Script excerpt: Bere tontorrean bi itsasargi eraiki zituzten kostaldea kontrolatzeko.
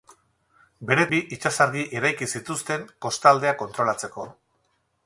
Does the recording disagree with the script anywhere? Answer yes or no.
yes